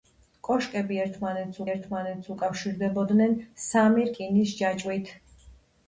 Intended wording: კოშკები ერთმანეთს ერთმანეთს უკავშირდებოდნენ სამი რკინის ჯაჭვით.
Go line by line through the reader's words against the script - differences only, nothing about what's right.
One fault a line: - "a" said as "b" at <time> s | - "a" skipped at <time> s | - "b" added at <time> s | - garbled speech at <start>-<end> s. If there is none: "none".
none